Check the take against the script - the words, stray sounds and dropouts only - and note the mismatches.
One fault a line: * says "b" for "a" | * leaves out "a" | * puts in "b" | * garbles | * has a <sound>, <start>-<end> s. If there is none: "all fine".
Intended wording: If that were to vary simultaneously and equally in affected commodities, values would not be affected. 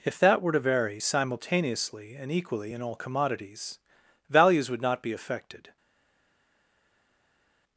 * says "all" for "affected"